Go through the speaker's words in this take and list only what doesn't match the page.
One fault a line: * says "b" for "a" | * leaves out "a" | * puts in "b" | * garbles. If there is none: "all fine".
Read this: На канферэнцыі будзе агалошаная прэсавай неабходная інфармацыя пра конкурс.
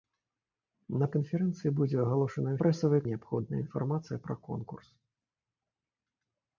all fine